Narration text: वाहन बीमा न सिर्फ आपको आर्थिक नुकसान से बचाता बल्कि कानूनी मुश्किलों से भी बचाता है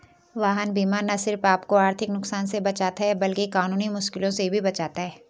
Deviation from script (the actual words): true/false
true